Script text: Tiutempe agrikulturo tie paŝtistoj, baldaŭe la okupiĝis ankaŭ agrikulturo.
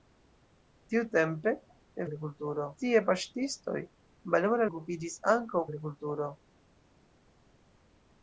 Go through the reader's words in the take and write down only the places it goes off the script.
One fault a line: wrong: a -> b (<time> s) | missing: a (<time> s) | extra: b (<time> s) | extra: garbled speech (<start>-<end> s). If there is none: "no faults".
no faults